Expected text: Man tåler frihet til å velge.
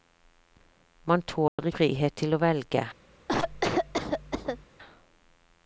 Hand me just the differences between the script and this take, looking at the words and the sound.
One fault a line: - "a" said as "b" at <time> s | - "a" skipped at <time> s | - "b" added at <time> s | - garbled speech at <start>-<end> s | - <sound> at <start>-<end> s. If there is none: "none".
- dropout at 1.5-1.6 s
- cough at 3.3-4.7 s